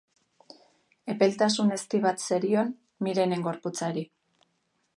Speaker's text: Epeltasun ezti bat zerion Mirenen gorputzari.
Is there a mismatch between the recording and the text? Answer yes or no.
no